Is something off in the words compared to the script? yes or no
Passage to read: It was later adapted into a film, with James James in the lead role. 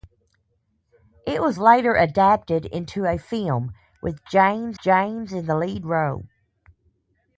no